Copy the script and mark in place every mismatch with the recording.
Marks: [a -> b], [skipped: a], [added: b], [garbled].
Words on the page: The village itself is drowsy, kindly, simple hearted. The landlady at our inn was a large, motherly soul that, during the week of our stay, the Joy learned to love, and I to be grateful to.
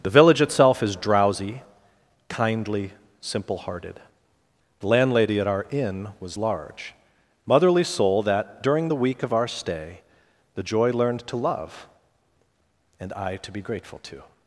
The village itself is drowsy, kindly, simple hearted. The landlady at our inn was [skipped: a] large, motherly soul that, during the week of our stay, the Joy learned to love, and I to be grateful to.